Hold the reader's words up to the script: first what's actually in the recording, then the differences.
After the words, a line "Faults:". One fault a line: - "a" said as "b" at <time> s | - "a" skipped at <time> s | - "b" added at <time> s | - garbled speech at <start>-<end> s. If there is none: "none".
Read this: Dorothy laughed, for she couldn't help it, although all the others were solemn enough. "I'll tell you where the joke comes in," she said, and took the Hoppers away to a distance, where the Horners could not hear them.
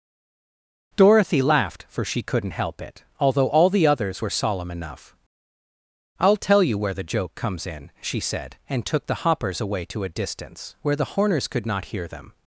Dorothy laughed, for she couldn't help it, although all the others were solemn enough. "I'll tell you where the joke comes in," she said, and took the Hoppers away to a distance, where the Horners could not hear them.
Faults:
none